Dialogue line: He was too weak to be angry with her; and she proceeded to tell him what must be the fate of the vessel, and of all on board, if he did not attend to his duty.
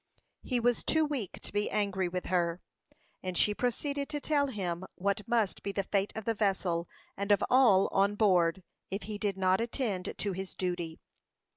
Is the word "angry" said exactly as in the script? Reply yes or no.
yes